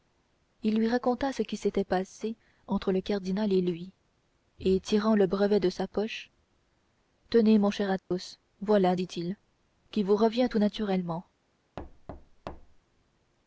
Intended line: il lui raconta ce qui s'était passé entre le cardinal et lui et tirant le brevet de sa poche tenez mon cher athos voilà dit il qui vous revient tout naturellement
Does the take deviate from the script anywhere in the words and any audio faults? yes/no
yes